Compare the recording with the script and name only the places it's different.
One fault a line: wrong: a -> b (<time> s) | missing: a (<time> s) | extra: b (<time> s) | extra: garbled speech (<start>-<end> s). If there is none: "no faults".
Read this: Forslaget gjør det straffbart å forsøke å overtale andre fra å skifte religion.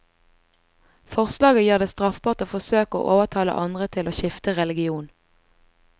wrong: fra -> til (4.0 s)